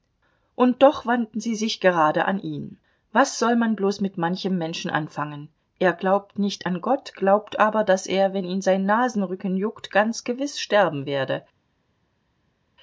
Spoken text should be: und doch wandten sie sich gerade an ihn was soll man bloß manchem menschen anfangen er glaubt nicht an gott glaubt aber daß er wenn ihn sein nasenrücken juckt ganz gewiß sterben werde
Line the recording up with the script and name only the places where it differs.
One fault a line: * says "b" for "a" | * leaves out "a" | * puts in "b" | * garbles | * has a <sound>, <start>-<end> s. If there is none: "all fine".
* puts in "mit"